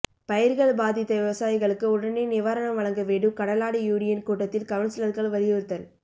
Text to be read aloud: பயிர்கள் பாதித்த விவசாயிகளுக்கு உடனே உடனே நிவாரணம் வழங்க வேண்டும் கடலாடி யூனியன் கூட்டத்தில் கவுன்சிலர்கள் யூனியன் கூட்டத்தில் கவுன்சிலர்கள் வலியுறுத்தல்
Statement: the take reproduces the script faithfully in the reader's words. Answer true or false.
false